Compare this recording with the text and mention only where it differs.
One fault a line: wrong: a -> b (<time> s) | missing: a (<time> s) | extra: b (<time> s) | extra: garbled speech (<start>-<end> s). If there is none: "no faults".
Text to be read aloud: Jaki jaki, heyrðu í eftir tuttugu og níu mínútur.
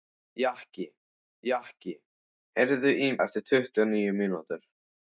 no faults